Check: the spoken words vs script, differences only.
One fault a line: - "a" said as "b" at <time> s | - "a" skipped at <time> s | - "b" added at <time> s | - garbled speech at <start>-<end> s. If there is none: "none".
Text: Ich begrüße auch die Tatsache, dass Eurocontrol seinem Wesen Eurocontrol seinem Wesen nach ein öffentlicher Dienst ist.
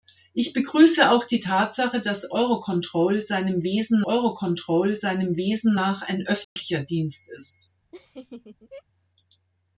none